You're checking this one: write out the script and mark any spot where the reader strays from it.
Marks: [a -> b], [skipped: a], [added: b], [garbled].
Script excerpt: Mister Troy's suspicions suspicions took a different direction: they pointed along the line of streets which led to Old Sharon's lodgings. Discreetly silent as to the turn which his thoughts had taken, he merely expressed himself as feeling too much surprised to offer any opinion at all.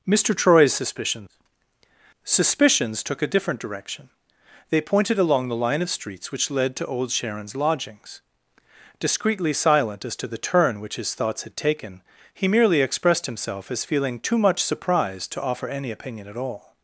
Mister Troy's suspicions suspicions took a different direction: they pointed along the line of streets which led to Old Sharon's lodgings. Discreetly silent as to the turn which his thoughts had taken, he merely expressed himself as feeling too much surprised to offer any opinion at all.